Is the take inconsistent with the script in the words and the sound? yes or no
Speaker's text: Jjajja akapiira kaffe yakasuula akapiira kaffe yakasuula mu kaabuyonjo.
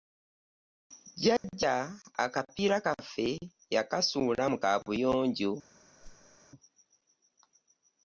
yes